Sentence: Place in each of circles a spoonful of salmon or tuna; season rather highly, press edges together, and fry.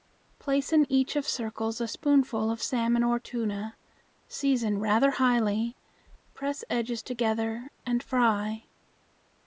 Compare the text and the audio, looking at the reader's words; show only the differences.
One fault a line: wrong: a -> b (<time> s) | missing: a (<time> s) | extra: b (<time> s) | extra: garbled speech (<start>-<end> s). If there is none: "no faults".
no faults